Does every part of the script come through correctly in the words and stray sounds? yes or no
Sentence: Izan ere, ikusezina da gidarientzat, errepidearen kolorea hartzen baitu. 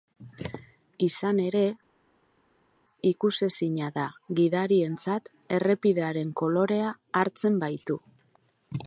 yes